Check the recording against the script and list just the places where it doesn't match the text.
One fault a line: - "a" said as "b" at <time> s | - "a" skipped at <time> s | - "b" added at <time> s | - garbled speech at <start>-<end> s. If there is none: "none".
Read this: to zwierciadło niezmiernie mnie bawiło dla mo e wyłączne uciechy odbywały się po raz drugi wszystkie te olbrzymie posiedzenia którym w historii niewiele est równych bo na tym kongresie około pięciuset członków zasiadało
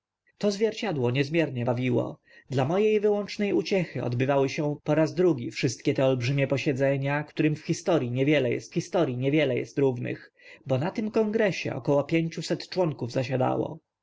- "mnie" skipped at 1.6 s
- "historii niewiele est" added at 8.7 s